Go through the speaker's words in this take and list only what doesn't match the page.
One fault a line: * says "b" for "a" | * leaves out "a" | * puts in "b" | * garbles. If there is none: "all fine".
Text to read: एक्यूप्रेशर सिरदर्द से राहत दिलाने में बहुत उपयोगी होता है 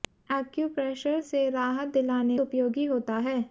* leaves out "सिरदर्द"
* leaves out "में बहुत"